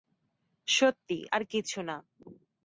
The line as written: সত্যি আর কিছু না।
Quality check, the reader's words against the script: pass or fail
pass